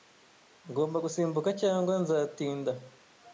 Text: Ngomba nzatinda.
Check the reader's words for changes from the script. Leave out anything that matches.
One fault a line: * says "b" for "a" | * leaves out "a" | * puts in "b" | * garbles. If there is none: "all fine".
* puts in "gusimbuka cyangwa"